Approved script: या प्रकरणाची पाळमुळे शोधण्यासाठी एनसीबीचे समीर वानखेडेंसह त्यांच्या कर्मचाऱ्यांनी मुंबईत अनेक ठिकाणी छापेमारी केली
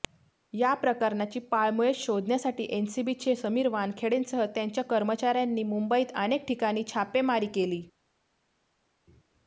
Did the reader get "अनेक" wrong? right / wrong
right